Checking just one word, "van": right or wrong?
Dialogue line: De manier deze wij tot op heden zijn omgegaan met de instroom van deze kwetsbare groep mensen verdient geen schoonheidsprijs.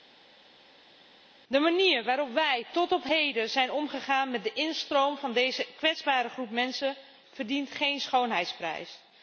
right